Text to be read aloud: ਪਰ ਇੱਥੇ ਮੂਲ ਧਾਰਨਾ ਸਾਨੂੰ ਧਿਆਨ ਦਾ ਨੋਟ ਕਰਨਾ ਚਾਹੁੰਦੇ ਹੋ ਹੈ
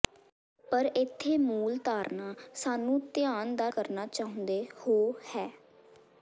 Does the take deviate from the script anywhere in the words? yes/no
yes